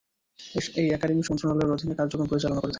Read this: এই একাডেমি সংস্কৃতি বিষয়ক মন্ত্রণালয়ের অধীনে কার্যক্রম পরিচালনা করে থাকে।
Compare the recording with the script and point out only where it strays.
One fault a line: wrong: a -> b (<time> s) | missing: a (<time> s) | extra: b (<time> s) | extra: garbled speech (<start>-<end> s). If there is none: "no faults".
missing: সংস্কৃতি বিষয়ক (1.2 s)